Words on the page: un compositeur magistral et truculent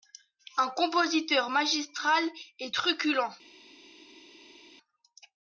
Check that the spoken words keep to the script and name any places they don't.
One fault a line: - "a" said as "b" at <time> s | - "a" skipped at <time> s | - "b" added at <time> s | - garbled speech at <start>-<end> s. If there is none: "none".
none